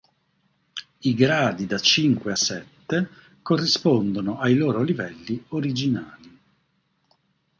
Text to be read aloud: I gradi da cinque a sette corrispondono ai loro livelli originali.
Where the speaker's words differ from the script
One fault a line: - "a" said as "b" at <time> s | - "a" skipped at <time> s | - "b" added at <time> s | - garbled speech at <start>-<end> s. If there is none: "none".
none